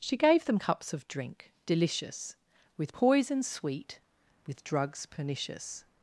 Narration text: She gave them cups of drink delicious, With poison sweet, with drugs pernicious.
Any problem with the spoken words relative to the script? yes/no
no